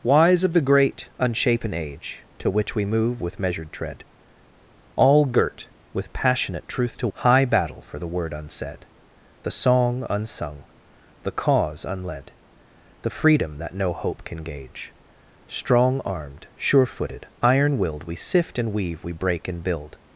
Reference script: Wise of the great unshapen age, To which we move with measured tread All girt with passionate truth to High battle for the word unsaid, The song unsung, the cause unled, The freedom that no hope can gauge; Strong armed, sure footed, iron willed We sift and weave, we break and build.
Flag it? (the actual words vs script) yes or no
no